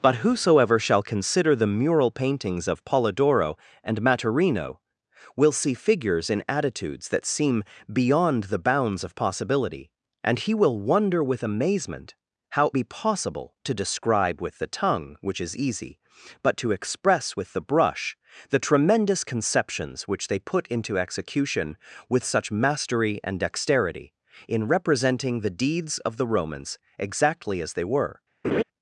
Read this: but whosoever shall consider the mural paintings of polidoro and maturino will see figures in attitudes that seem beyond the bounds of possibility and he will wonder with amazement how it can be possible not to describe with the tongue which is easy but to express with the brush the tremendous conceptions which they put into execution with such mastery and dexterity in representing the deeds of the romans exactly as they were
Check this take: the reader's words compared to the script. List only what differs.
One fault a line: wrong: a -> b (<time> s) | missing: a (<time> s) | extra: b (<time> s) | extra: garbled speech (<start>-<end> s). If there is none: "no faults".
missing: it can (12.7 s)
missing: not (13.6 s)